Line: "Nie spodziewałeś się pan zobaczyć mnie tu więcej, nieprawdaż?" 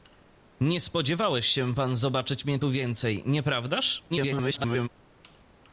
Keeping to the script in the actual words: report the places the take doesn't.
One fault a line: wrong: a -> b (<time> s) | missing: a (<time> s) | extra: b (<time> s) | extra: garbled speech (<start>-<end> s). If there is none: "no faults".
extra: garbled speech (4.1-4.9 s)